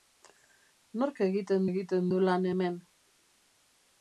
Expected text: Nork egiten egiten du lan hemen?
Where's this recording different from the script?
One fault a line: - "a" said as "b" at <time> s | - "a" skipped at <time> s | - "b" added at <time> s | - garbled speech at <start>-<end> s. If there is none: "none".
none